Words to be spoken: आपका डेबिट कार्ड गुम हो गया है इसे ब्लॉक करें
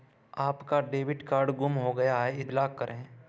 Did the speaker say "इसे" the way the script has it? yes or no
no